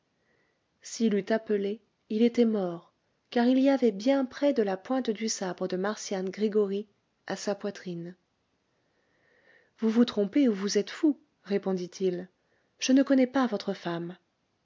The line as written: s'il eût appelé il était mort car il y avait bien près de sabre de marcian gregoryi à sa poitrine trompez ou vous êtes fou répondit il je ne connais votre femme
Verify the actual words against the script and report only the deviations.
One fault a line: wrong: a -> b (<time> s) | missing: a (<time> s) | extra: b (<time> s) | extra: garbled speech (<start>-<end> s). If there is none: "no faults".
extra: la pointe du (4.6 s)
extra: vous vous (9.8 s)
extra: pas (13.3 s)